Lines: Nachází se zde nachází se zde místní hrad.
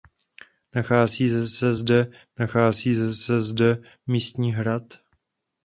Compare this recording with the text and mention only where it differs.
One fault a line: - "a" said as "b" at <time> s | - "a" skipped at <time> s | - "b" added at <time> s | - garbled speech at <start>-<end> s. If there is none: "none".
none